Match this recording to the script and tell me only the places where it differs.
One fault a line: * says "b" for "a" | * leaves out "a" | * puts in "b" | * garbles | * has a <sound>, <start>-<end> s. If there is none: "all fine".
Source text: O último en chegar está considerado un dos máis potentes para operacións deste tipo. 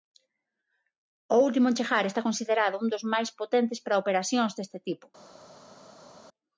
all fine